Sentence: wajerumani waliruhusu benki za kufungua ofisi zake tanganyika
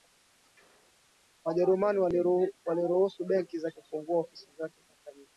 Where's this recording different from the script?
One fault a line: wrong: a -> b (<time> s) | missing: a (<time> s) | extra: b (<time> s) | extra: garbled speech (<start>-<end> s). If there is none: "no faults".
no faults